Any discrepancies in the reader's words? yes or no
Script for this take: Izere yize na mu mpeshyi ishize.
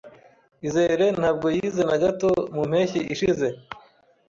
yes